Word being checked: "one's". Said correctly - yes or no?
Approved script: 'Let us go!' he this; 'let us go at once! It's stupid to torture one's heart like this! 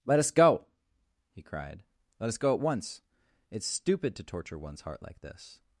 yes